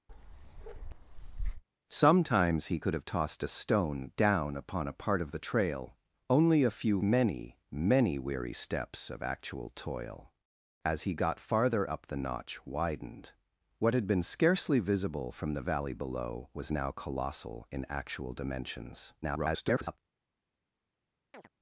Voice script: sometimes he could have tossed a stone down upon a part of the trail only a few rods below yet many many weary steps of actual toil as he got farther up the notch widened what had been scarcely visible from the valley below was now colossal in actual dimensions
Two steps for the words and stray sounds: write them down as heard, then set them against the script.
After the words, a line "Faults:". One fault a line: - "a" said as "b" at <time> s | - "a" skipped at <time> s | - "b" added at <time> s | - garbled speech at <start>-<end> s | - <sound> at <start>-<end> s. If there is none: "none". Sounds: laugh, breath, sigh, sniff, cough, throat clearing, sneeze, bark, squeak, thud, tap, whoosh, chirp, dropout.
sometimes he could have tossed a stone down upon a part of the trail only a few many many weary steps of actual toil as he got farther up the notch widened what had been scarcely visible from the valley below was now colossal in actual dimensions [garbled]
Faults:
- bark at 0.1-1.6 s
- "rods below yet" skipped at 7.0 s
- garbled speech at 19.2-20.0 s
- chirp at 21.3-21.5 s